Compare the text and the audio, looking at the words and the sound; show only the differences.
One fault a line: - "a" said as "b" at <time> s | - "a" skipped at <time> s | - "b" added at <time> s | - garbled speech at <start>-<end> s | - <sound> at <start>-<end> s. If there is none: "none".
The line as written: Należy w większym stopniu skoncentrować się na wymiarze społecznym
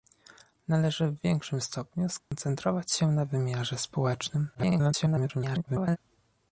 - dropout at 2.2-2.3 s
- garbled speech at 4.5-6.0 s